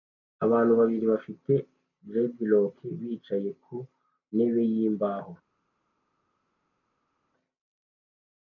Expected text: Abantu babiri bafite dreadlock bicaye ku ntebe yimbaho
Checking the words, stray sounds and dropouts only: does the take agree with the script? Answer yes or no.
yes